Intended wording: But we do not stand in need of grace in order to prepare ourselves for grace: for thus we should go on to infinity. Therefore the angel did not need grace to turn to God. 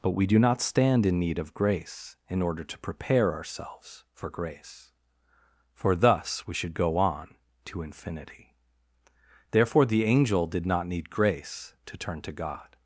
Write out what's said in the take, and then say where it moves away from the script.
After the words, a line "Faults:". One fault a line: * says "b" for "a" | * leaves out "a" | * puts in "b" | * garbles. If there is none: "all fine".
But we do not stand in need of grace in order to prepare ourselves for grace: for thus we should go on to infinity. Therefore the angel did not need grace to turn to God.
Faults:
all fine